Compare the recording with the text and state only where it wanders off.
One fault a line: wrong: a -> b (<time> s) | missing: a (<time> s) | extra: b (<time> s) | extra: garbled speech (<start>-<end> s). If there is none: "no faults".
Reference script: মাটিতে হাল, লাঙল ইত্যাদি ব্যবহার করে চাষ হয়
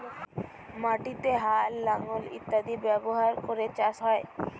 no faults